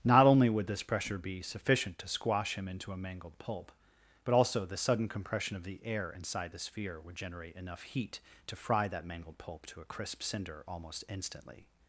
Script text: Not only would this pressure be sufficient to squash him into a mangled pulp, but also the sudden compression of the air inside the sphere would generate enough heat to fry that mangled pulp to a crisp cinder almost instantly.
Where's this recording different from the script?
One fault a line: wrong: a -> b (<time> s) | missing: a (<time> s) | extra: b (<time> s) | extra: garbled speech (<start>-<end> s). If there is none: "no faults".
no faults